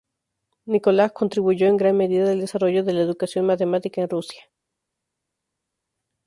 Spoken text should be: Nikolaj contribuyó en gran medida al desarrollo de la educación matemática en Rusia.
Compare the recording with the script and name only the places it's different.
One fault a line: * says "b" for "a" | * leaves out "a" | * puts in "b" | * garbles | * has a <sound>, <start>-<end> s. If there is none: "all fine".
all fine